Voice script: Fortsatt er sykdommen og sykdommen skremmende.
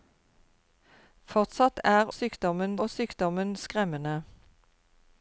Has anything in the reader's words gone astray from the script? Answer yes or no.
no